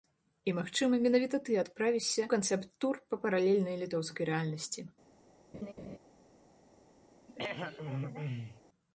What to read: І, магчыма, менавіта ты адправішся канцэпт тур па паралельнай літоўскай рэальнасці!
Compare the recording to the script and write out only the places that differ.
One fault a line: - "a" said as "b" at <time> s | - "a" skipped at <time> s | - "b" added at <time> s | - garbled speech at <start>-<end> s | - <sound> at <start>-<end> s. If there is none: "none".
- laugh at 5.5-6.0 s
- throat clearing at 7.3-8.6 s